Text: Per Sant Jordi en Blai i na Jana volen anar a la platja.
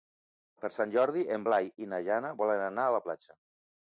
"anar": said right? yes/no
yes